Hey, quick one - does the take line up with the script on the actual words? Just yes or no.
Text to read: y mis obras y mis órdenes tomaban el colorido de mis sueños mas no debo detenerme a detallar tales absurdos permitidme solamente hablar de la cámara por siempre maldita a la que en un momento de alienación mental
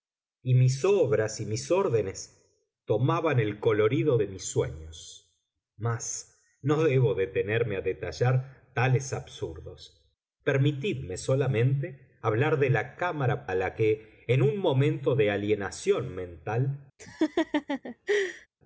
no